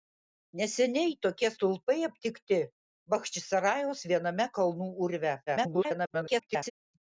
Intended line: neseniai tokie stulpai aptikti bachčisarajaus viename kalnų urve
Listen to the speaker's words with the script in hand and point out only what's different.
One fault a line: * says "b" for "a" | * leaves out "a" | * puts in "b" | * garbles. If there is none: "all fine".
* garbles